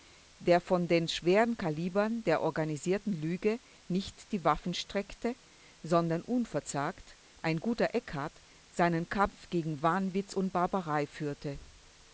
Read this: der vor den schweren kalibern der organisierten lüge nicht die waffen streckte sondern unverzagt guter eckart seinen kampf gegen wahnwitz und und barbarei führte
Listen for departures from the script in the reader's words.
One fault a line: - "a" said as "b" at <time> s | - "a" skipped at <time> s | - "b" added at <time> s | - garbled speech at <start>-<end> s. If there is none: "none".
- "ein" added at 7.4 s
- "und" skipped at 10.5 s